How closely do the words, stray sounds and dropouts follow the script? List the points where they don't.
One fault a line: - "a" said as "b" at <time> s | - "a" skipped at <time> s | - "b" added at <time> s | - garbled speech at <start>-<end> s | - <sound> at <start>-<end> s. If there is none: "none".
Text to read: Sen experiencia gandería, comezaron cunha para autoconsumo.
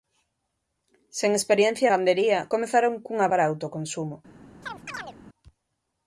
- chirp at 4.6-5.2 s